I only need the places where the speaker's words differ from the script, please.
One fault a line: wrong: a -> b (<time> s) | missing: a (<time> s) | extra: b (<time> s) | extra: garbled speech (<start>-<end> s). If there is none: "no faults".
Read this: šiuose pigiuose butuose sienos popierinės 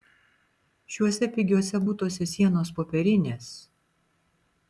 no faults